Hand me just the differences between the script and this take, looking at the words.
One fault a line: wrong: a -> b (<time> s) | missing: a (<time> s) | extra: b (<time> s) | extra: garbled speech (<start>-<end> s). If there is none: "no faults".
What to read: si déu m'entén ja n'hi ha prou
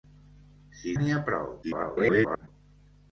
missing: déu m'entén ja (0.9 s)
extra: garbled speech (1.6-2.5 s)